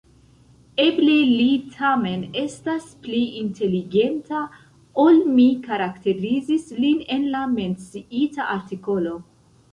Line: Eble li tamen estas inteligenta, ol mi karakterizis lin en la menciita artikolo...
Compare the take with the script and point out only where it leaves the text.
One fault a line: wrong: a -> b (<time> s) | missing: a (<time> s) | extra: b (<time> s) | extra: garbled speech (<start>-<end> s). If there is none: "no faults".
extra: pli (3.0 s)